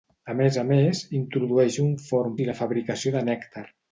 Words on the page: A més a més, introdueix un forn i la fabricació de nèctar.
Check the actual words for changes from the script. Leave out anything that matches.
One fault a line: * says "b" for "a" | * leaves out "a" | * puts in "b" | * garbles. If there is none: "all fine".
all fine